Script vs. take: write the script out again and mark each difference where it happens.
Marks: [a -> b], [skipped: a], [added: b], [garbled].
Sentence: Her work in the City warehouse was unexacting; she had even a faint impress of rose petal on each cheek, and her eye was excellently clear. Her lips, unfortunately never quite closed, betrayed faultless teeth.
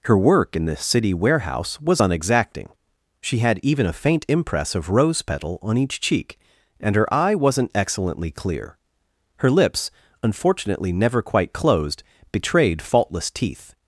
Her work in the City warehouse was unexacting; she had even a faint impress of rose petal on each cheek, and her eye [was -> wasn't] excellently clear. Her lips, unfortunately never quite closed, betrayed faultless teeth.